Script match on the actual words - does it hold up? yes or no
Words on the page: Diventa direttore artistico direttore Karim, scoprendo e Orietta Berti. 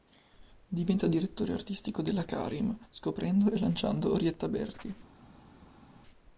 no